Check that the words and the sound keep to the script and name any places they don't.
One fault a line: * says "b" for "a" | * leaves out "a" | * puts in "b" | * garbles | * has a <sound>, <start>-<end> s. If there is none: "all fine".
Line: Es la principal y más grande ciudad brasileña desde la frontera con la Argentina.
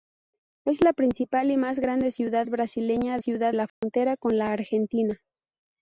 * says "ciudad" for "desde"
* has a dropout, 3.7-3.8 s